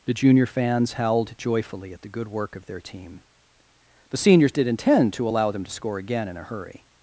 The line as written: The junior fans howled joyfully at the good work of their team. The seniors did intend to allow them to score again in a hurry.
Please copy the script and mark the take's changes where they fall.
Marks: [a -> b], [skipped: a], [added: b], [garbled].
The junior fans howled joyfully at the good work of their team. The seniors did intend to allow them to score again in a hurry.